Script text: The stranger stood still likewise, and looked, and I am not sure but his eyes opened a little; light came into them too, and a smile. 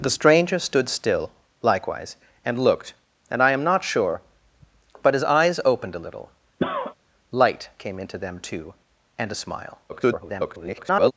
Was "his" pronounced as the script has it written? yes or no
yes